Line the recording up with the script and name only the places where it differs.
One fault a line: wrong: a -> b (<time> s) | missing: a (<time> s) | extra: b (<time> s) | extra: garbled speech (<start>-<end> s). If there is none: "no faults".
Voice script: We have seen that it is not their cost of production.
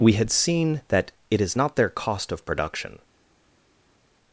wrong: have -> had (0.1 s)